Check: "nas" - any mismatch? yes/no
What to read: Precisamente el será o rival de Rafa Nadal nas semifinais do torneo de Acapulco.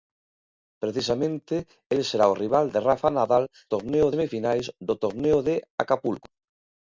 yes